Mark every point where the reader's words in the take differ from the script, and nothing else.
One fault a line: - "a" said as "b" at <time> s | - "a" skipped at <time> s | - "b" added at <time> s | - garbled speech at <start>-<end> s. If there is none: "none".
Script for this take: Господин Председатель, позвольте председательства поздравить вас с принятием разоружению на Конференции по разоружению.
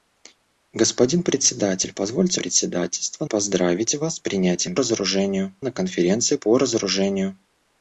none